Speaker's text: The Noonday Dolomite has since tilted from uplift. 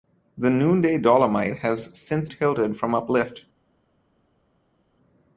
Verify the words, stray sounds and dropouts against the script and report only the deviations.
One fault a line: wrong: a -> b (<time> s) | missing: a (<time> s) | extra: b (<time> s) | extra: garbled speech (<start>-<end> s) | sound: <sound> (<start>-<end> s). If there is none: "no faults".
no faults